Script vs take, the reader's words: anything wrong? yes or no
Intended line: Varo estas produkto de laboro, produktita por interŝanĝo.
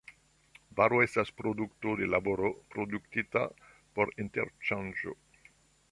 no